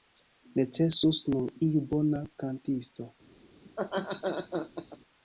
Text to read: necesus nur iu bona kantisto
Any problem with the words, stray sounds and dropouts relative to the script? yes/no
yes